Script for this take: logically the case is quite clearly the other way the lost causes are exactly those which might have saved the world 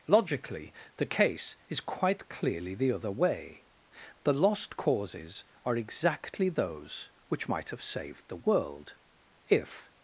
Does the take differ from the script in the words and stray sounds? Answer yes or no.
yes